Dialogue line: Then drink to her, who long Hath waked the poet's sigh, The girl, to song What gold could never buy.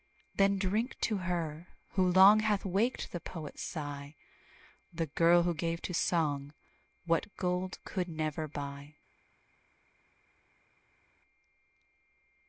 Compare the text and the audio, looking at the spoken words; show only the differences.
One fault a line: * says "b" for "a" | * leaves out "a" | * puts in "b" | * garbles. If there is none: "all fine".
* puts in "who gave"